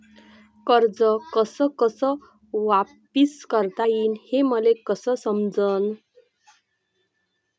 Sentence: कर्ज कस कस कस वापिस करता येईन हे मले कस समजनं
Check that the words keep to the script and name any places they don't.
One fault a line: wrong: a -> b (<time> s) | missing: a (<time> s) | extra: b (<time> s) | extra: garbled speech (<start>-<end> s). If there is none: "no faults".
missing: कस (2.0 s)